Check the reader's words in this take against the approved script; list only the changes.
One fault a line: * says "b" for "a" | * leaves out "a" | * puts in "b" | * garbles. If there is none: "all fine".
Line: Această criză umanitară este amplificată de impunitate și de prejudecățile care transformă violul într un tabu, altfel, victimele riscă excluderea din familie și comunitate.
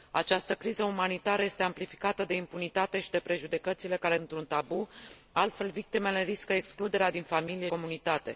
* leaves out "transformă violul"
* leaves out "și"